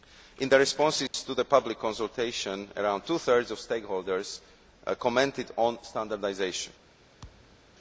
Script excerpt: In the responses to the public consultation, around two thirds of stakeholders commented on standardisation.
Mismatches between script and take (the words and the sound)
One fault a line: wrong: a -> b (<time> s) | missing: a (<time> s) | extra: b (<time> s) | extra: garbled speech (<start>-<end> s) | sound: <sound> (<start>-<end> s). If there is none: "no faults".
sound: dropout (1.1-1.1 s)
sound: thud (7.2-7.7 s)